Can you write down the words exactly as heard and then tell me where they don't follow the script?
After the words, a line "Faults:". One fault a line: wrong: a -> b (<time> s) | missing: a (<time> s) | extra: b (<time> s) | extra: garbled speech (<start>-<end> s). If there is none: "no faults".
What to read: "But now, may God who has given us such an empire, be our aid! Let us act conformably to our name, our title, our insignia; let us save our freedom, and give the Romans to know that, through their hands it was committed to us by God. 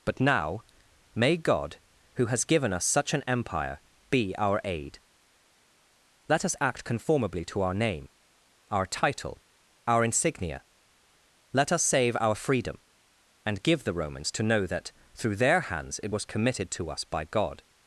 "But now, may God who has given us such an empire, be our aid! Let us act conformably to our name, our title, our insignia; let us save our freedom, and give the Romans to know that, through their hands it was committed to us by God.
Faults:
no faults